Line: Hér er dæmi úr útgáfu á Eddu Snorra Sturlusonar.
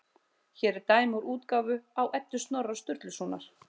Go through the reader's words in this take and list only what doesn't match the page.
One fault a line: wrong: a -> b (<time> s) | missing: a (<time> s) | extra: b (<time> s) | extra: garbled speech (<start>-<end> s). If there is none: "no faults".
no faults